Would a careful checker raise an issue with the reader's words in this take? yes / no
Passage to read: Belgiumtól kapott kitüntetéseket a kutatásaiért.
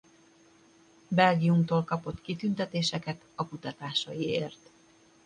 no